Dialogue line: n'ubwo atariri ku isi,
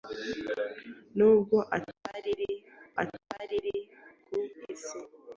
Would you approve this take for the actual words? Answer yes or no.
no